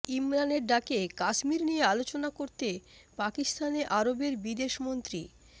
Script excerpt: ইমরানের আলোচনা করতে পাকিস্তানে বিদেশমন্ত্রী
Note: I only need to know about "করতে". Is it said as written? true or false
true